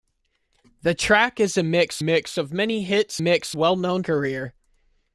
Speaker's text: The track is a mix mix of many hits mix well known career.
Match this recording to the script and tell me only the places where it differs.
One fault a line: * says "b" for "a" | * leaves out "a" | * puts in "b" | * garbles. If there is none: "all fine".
all fine